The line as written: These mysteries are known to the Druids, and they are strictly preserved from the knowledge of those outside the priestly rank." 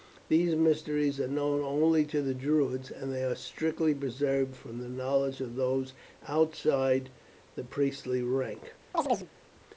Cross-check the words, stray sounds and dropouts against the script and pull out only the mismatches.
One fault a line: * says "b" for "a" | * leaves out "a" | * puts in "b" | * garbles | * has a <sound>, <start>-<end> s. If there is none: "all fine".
* puts in "only"
* has a chirp, 8.9-9.3 s